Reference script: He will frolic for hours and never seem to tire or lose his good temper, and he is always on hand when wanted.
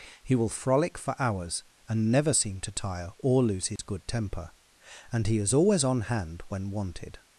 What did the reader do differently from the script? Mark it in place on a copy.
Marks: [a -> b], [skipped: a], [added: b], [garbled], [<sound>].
He will frolic for hours and never seem to tire or lose his [dropout] good temper, and he is always on hand when wanted.